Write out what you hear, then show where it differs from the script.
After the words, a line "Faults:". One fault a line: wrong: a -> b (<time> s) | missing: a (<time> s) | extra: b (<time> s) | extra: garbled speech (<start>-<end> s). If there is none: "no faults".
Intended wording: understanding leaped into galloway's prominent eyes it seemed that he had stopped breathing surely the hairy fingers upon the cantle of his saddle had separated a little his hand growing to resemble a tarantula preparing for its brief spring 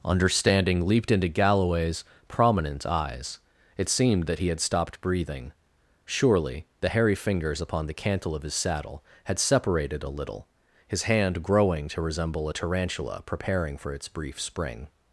understanding leaped into galloway's prominent eyes it seemed that he had stopped breathing surely the hairy fingers upon the cantle of his saddle had separated a little his hand growing to resemble a tarantula preparing for its brief spring
Faults:
no faults